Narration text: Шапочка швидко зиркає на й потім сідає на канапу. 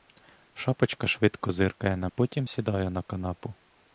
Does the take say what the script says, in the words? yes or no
yes